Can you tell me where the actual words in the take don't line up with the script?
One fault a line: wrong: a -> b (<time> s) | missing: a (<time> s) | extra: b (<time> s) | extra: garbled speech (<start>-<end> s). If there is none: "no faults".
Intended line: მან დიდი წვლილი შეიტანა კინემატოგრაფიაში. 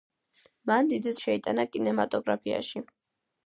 missing: წვლილი (1.1 s)